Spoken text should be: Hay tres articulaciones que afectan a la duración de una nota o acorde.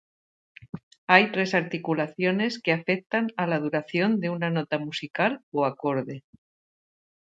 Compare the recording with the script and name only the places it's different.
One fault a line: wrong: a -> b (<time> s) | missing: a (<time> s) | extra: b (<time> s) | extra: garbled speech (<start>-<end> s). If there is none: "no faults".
extra: musical (4.8 s)